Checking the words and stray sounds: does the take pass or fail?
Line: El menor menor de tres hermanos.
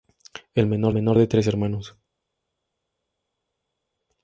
pass